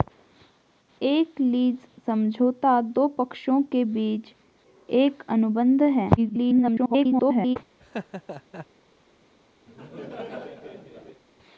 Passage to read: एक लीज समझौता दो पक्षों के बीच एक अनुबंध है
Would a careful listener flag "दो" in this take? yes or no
no